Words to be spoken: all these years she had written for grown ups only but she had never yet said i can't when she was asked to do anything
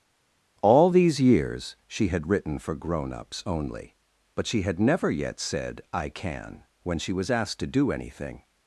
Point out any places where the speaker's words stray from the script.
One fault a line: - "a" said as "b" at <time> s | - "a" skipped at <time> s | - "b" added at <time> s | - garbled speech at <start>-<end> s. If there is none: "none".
- "can't" said as "can" at 6.1 s